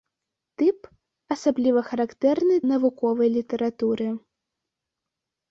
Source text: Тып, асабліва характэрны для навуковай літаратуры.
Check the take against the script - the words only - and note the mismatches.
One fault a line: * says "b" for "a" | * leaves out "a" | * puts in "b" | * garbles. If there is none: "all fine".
* leaves out "для"